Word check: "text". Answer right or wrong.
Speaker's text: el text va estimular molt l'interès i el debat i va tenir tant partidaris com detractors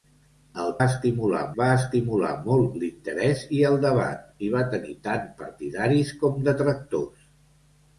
wrong